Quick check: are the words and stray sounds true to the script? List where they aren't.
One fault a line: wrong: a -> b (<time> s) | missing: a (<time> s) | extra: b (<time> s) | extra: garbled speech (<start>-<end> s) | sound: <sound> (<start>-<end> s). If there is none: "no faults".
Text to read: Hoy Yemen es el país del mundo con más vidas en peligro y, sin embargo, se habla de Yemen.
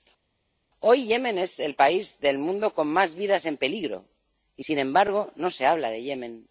extra: no (5.4 s)